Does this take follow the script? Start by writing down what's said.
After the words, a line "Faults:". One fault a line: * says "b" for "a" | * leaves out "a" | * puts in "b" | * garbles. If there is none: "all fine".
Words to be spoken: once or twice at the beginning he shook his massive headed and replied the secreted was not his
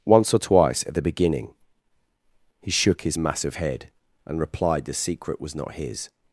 once or twice at the beginning he shook his massive head and replied the secret was not his
Faults:
* says "head" for "headed"
* says "secret" for "secreted"